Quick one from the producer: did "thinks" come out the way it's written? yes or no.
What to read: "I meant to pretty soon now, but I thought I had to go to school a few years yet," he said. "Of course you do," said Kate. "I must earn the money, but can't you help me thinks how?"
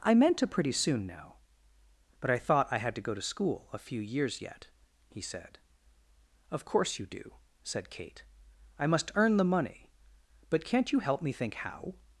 no